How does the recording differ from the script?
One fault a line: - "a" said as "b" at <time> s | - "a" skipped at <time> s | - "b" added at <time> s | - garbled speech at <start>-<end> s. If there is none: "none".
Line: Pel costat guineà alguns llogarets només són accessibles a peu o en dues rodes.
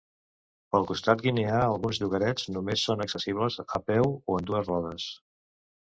none